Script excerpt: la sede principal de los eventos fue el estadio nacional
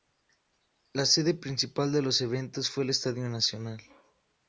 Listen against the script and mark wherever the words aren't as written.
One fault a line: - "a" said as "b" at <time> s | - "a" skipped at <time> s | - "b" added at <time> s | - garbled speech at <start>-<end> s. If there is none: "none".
none